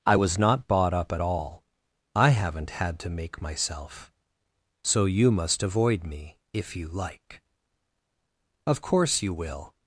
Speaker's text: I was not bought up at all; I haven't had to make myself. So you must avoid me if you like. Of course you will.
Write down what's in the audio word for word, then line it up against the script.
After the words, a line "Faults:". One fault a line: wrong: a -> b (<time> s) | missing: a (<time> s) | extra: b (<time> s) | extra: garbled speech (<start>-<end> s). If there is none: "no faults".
I was not bought up at all; I haven't had to make myself. So you must avoid me if you like. Of course you will.
Faults:
no faults